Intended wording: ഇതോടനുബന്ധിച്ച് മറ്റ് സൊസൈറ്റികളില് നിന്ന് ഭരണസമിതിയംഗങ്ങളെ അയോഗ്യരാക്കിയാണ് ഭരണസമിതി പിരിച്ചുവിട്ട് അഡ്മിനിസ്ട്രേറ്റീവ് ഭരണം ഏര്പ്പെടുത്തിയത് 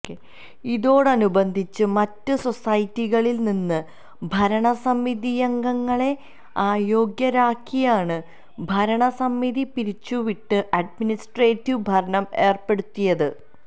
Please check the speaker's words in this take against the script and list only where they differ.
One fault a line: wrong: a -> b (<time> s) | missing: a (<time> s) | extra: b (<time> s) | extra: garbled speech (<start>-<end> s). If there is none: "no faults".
no faults